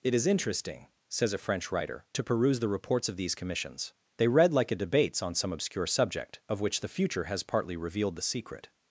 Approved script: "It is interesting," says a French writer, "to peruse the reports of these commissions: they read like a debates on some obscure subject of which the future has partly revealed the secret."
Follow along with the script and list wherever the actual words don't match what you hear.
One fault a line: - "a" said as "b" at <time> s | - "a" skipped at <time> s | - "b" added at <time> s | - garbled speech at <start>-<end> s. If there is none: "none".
none